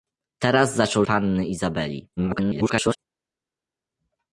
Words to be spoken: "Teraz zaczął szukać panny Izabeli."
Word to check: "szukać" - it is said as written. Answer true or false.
false